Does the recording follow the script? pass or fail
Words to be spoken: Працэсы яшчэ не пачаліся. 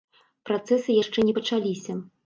pass